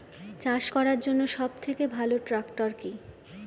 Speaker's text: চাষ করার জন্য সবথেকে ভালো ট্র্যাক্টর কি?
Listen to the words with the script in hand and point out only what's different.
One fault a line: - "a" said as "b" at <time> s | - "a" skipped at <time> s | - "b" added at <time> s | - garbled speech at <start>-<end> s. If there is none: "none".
none